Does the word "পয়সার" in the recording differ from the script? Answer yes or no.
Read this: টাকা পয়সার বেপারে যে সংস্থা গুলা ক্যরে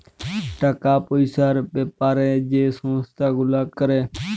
no